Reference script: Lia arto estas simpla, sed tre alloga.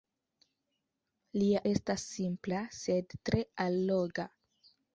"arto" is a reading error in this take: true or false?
true